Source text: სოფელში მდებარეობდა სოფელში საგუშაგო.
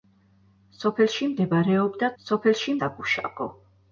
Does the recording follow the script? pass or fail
pass